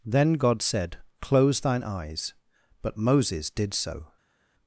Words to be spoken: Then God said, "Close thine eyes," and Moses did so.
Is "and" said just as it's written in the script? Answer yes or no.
no